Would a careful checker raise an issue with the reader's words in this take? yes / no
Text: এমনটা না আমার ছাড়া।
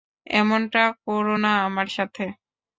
yes